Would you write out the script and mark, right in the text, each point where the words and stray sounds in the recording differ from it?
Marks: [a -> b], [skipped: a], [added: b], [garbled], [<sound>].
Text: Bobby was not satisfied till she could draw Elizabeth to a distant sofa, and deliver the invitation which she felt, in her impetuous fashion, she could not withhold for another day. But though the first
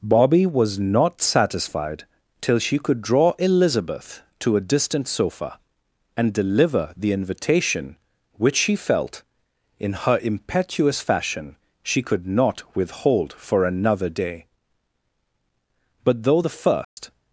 Bobby was not satisfied till she could draw Elizabeth to a distant sofa, and deliver the invitation which she felt, in her impetuous fashion, she could not withhold for another day. But though the first [dropout]